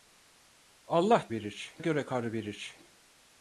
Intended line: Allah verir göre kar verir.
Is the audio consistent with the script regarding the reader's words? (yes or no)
yes